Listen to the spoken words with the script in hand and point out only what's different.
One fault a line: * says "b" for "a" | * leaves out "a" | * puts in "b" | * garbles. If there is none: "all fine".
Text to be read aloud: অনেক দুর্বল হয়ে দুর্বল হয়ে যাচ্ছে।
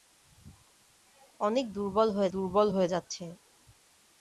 all fine